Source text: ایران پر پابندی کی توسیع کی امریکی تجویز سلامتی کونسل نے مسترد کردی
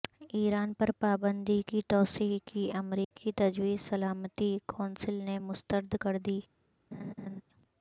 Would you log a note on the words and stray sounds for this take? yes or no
yes